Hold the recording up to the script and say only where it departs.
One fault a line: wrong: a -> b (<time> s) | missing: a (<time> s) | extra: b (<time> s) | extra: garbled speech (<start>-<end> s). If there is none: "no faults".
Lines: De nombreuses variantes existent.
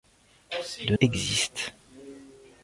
missing: nombreuses variantes (0.9 s)